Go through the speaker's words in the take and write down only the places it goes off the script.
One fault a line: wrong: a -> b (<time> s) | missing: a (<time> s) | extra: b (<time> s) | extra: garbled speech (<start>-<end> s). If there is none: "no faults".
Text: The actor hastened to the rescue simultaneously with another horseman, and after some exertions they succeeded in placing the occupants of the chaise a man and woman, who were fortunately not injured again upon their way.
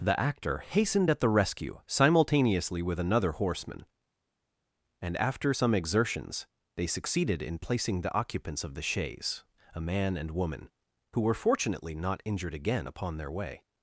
wrong: to -> at (1.1 s)